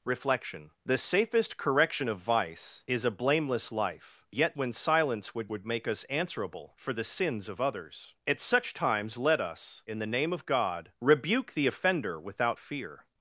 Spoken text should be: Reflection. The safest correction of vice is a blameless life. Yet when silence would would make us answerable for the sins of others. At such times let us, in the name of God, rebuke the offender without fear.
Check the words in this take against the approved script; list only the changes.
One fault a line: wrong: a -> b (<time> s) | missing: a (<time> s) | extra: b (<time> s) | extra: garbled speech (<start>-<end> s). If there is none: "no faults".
no faults